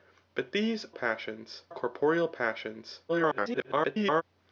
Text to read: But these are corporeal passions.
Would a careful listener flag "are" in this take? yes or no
yes